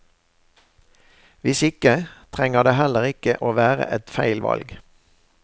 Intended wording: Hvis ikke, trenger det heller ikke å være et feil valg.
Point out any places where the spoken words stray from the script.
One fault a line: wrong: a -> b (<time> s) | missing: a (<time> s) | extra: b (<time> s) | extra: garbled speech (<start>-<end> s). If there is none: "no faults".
no faults